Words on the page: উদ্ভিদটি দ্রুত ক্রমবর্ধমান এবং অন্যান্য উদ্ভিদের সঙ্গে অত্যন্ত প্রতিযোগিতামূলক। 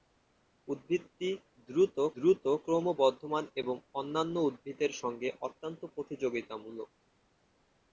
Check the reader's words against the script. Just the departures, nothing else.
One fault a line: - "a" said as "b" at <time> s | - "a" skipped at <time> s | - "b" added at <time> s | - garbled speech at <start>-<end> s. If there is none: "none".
- "দ্রুত" added at 2.2 s